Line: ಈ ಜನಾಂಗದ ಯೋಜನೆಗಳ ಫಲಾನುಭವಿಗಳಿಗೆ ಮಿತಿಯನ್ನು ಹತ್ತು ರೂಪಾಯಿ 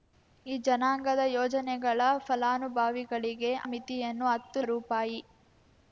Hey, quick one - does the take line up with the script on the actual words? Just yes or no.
yes